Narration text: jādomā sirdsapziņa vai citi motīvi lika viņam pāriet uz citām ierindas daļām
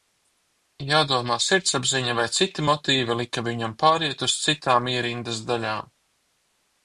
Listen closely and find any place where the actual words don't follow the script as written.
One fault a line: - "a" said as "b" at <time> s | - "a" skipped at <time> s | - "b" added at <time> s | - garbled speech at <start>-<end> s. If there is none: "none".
none